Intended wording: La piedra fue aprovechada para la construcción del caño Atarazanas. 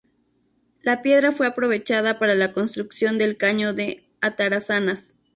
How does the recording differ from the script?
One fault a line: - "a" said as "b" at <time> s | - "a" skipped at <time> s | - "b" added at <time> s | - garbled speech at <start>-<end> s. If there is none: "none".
- "de" added at 3.8 s